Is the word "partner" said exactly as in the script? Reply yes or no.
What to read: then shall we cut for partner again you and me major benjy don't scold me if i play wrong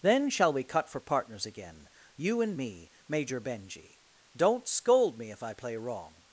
no